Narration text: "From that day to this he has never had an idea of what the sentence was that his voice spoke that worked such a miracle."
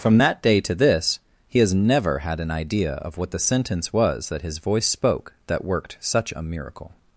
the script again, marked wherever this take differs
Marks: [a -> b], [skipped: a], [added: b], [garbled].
"From that day to this he has never had an idea of what the sentence was that his voice spoke that worked such a miracle."